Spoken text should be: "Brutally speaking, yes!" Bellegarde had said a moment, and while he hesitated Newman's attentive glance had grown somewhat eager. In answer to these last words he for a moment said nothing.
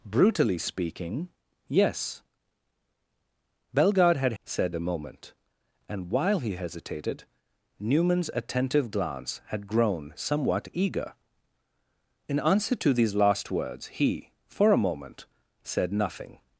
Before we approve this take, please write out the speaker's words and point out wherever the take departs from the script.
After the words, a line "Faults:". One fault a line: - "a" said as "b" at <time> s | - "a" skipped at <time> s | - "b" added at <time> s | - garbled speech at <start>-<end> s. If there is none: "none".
"Brutally speaking, yes!" Bellegarde had said a moment, and while he hesitated Newman's attentive glance had grown somewhat eager. In answer to these last words he for a moment said nothing.
Faults:
none